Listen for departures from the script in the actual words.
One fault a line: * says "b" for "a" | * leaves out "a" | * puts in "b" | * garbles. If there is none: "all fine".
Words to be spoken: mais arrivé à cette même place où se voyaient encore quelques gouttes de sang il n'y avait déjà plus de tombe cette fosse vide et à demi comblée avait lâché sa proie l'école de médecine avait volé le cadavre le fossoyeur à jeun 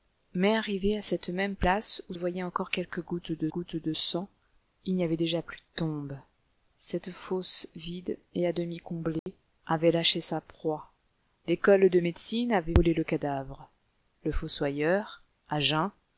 * leaves out "se"
* puts in "gouttes de"